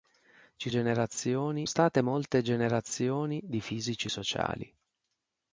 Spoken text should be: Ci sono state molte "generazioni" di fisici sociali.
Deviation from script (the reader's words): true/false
true